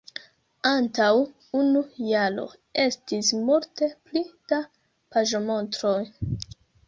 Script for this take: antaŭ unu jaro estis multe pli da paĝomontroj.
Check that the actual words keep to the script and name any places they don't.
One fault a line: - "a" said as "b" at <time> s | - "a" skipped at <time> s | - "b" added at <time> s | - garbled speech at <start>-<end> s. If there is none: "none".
none